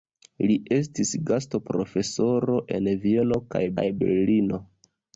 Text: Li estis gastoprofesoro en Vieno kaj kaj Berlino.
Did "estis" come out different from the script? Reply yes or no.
no